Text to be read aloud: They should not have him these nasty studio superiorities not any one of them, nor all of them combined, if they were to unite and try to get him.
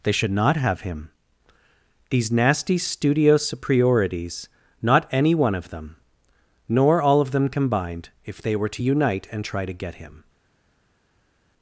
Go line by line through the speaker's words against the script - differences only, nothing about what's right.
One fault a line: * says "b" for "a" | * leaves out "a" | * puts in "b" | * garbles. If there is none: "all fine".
all fine